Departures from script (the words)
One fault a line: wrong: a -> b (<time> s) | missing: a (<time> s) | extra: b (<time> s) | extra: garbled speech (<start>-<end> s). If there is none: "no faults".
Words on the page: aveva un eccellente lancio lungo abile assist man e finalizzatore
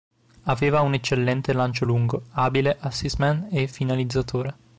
no faults